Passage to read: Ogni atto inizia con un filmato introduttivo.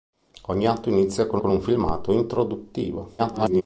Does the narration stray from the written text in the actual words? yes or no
yes